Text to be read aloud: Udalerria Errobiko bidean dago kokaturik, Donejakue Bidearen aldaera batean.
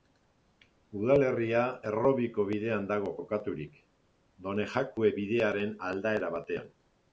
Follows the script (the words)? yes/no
yes